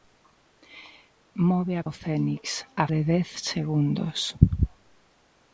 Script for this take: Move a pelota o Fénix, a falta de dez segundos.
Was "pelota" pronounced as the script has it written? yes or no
no